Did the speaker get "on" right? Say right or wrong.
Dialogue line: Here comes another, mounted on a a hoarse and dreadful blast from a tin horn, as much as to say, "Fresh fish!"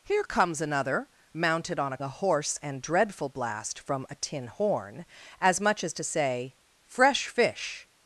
right